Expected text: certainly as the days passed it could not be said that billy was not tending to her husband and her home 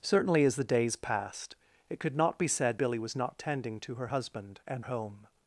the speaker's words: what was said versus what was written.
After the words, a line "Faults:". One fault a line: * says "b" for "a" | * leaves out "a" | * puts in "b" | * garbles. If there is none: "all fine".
certainly as the days passed it could not be said billy was not tending to her husband and home
Faults:
* leaves out "that"
* leaves out "her"